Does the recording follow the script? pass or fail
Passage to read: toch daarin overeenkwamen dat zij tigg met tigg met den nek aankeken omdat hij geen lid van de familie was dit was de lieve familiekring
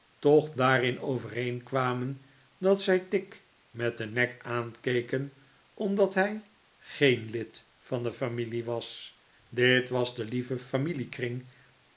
fail